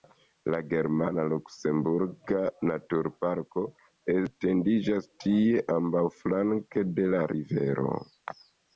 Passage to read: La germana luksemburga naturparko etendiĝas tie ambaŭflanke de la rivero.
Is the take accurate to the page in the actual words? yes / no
yes